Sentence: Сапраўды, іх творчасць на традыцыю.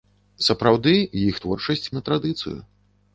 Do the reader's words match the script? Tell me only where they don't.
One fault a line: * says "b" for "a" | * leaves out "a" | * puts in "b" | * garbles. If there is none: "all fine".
all fine